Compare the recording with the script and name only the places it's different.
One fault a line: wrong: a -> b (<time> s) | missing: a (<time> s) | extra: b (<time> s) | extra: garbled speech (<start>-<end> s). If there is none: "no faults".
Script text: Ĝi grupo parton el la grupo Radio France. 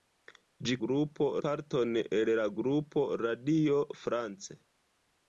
no faults